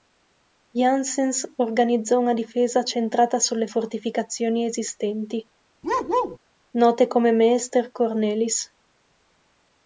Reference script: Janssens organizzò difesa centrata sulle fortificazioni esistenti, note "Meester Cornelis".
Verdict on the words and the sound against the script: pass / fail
fail